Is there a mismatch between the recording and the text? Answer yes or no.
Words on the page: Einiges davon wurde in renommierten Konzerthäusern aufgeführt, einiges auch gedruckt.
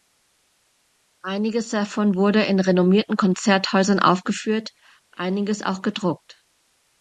no